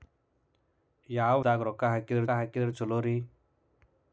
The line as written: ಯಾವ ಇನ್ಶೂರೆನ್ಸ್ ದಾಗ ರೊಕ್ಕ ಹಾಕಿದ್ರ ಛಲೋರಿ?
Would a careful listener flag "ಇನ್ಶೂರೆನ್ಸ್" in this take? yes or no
yes